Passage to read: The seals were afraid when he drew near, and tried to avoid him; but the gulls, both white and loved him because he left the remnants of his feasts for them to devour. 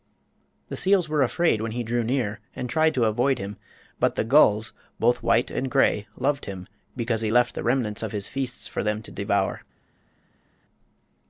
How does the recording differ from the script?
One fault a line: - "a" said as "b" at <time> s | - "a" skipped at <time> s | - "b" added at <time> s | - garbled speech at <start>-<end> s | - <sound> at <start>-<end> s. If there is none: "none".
- "gray" added at 5.7 s